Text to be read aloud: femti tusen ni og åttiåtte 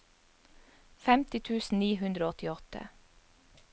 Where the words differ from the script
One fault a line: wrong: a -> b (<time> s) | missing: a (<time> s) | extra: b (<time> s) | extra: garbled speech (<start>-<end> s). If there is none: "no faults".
extra: hundre (2.0 s)